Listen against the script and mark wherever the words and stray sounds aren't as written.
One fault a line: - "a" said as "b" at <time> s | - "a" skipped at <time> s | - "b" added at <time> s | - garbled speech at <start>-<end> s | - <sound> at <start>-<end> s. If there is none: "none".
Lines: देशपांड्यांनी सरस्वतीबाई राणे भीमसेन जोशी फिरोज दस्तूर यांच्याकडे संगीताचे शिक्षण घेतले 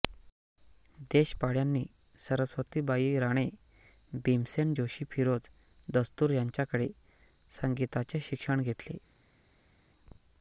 none